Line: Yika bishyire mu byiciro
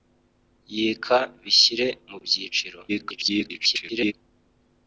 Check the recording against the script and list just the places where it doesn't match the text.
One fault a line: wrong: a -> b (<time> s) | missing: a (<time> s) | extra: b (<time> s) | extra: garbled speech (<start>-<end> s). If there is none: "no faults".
extra: garbled speech (2.9-4.1 s)